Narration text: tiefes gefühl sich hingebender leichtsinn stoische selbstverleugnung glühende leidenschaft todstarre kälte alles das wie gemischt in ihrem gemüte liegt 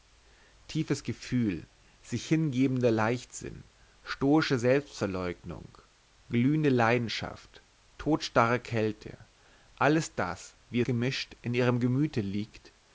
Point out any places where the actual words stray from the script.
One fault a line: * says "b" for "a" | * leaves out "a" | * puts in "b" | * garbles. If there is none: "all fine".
all fine